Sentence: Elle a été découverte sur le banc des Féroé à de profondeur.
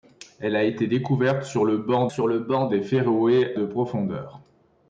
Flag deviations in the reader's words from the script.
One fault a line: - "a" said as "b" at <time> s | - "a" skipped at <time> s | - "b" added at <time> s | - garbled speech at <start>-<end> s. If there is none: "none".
- "sur le banc" added at 2.1 s
- "à" skipped at 3.5 s